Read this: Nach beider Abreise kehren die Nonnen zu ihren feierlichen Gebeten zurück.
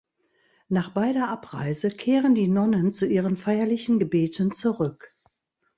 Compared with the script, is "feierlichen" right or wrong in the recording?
right